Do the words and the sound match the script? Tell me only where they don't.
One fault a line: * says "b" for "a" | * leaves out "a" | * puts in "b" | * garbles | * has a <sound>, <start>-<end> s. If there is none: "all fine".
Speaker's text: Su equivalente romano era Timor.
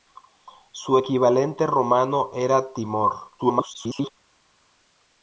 * garbles